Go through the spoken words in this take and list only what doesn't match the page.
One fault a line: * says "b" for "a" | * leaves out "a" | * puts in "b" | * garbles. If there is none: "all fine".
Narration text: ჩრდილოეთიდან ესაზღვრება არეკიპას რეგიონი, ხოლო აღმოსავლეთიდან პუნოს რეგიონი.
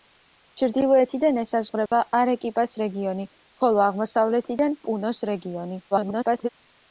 * garbles